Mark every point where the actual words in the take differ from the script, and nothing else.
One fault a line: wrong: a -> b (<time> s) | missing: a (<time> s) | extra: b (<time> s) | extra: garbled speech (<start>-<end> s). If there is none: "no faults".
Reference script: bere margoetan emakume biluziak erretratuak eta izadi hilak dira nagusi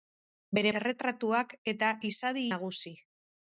missing: margoetan emakume biluziak (0.7 s)
missing: hilak dira (2.5 s)